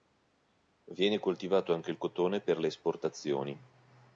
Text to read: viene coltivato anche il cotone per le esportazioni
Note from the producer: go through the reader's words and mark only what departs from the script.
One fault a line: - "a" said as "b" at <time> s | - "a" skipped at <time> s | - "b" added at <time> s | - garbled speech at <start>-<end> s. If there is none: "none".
none